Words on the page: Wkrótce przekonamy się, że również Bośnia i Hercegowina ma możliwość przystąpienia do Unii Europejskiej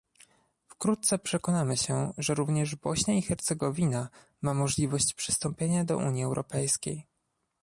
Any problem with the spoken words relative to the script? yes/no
no